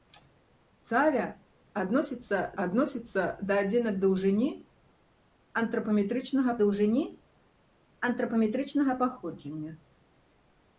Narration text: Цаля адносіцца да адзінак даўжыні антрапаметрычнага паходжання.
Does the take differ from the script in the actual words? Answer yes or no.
yes